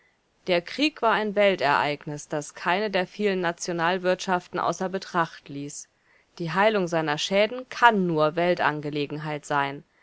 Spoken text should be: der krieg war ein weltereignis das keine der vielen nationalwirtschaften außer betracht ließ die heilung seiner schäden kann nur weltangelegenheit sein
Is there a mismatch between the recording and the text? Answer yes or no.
no